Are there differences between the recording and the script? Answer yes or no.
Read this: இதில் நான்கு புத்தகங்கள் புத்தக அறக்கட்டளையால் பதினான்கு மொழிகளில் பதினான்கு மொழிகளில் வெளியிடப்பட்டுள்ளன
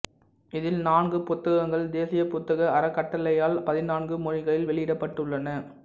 yes